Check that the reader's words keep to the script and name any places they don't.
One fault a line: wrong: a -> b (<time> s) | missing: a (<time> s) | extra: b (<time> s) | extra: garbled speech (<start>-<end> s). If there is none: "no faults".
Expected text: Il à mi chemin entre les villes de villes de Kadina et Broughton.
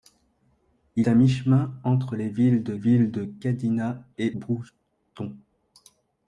no faults